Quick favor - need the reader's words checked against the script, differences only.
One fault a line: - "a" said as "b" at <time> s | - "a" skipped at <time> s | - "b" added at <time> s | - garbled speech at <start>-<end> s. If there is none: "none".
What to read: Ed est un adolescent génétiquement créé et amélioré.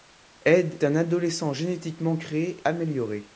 - "est" skipped at 0.8 s
- "et" skipped at 2.6 s